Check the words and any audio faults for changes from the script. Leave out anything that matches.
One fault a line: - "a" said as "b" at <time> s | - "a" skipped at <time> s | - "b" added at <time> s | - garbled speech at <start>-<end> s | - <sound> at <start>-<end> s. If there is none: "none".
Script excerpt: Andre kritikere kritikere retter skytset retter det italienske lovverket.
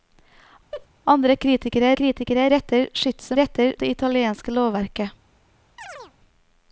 - laugh at 0.7-0.9 s
- chirp at 5.8-6.1 s